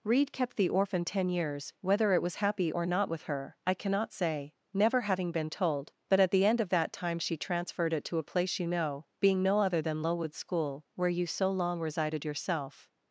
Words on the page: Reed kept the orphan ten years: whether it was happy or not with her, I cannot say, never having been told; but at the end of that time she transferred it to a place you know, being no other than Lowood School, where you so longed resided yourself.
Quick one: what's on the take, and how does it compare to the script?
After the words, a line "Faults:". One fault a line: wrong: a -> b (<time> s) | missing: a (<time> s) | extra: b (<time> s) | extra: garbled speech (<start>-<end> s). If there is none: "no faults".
Reed kept the orphan ten years: whether it was happy or not with her, I cannot say, never having been told; but at the end of that time she transferred it to a place you know, being no other than Lowood School, where you so long resided yourself.
Faults:
wrong: longed -> long (11.5 s)